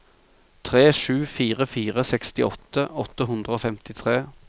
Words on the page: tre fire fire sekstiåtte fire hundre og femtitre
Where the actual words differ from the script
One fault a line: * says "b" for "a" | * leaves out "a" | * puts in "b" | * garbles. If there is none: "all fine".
* puts in "sju"
* says "åtte" for "fire"